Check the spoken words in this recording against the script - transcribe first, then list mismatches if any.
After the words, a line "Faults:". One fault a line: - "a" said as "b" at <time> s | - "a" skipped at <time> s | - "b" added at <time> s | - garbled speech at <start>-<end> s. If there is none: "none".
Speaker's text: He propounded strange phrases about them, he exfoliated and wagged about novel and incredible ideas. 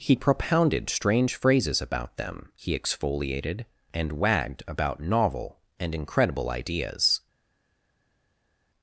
He propounded strange phrases about them, he exfoliated and wagged about novel and incredible ideas.
Faults:
none